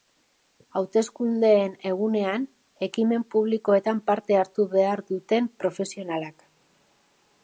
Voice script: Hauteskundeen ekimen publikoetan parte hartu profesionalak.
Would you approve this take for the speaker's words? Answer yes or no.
no